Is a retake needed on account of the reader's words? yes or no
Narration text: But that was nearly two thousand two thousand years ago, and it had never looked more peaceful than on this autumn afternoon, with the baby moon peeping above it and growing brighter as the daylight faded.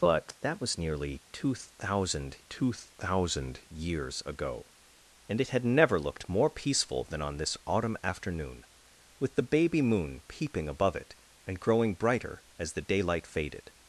no